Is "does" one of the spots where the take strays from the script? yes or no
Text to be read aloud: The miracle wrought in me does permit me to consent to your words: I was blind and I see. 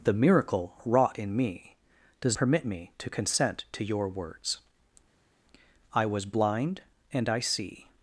no